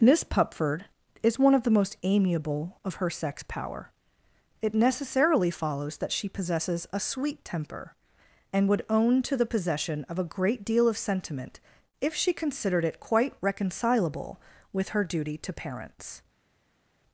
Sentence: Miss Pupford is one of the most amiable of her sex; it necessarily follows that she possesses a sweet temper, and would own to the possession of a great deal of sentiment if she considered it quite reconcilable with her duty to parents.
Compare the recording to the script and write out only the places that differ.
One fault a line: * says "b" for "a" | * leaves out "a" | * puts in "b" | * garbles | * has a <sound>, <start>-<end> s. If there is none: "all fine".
* puts in "power"